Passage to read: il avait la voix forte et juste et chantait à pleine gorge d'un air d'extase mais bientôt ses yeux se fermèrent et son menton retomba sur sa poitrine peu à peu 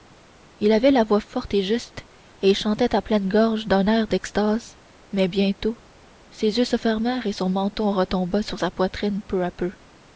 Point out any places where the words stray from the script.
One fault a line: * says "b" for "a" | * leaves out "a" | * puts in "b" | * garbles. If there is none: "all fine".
all fine